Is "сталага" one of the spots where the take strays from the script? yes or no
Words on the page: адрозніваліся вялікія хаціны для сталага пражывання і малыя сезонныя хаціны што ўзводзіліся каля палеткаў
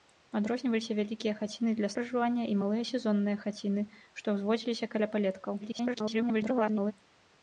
yes